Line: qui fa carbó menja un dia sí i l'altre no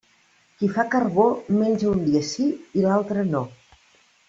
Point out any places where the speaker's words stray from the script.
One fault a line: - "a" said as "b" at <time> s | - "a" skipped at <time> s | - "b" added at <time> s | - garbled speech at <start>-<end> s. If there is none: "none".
none